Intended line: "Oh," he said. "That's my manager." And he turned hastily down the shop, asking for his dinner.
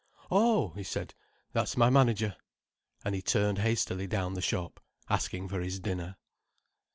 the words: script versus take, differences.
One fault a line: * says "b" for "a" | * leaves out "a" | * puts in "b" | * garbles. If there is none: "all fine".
all fine